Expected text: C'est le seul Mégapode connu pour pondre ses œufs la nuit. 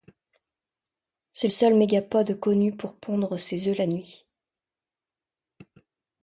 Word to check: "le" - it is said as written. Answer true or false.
false